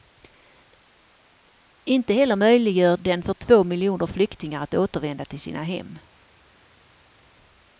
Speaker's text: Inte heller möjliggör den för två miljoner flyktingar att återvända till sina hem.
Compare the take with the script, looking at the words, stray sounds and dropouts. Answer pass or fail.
pass